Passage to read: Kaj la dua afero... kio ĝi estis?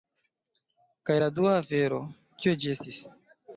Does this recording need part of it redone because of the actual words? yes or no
no